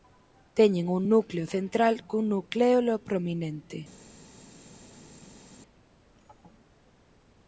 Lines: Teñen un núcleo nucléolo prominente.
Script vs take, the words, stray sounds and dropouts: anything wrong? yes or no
yes